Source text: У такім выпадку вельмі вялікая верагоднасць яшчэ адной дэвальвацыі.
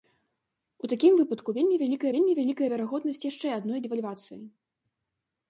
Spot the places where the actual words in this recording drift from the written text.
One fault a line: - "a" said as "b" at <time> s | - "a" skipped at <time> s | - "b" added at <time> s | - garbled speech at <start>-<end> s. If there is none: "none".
- "вельмі вялікая" added at 2.2 s